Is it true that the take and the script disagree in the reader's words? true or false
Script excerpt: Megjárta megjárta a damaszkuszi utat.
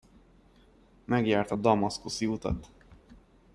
true